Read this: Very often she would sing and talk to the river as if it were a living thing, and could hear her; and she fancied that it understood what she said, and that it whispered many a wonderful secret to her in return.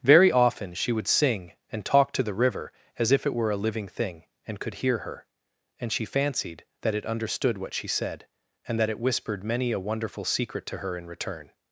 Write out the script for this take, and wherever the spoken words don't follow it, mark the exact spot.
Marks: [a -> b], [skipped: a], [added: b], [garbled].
Very often she would sing and talk to the river as if it were a living thing, and could hear her; and she fancied that it understood what she said, and that it whispered many a wonderful secret to her in return.